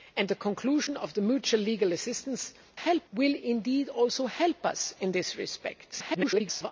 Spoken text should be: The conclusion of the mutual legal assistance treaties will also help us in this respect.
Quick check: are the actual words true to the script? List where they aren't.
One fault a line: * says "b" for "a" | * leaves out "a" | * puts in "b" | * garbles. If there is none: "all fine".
* says "help" for "treaties"
* garbles